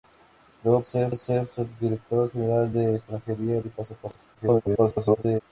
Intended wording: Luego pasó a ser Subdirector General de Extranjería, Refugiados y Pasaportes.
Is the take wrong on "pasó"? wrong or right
wrong